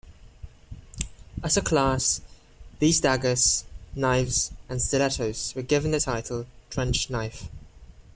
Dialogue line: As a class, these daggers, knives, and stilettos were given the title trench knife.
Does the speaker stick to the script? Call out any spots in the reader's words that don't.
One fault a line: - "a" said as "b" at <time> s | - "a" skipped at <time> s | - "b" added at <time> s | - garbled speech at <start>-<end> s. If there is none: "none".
none